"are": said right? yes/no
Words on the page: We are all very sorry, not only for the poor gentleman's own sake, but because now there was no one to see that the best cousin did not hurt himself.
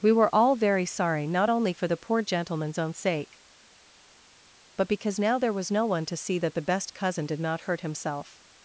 no